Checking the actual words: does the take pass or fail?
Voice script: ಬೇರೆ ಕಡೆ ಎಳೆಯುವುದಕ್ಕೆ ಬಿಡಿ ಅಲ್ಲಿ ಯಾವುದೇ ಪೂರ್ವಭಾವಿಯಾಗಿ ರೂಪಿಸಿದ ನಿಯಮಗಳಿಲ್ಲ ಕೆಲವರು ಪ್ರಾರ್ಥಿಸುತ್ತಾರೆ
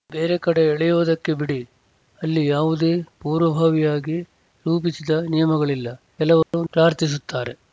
pass